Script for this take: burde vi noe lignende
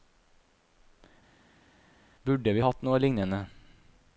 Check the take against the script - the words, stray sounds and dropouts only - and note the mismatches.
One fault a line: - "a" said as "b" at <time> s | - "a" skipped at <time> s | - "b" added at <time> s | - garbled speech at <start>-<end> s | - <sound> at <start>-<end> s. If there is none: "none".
- "hatt" added at 2.6 s